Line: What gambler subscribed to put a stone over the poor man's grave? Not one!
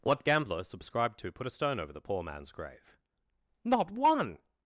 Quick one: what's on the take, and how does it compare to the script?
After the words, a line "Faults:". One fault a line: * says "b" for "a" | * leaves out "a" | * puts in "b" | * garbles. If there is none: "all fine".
What gambler subscribed to put a stone over the poor man's grave? Not one!
Faults:
all fine